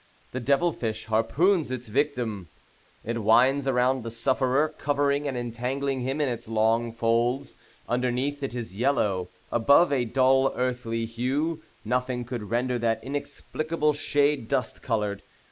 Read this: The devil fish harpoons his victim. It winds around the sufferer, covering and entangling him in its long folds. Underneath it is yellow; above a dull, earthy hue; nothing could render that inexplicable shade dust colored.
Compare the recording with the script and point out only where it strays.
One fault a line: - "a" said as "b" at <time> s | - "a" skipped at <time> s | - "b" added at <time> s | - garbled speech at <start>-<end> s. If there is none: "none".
- "his" said as "its" at 1.7 s